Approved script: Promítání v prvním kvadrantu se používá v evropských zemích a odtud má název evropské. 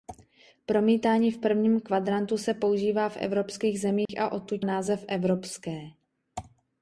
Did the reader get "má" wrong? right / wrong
wrong